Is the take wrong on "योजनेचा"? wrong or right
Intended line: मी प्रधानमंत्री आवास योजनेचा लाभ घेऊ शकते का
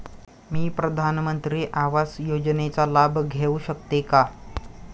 right